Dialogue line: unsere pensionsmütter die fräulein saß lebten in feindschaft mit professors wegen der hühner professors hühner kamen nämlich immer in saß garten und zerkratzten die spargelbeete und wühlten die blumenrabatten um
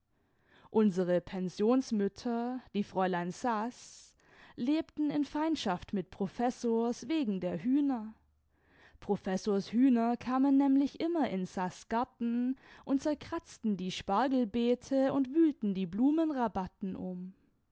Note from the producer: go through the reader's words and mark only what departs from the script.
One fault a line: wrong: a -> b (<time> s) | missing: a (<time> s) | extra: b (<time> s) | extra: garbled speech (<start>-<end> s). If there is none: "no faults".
no faults